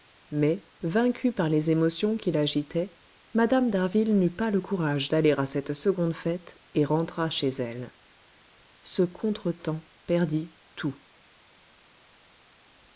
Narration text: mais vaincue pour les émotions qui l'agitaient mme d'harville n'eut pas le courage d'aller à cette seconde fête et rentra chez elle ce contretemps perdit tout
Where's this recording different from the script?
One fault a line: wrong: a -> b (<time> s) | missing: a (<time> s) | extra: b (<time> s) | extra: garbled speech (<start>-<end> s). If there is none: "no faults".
wrong: pour -> par (1.3 s)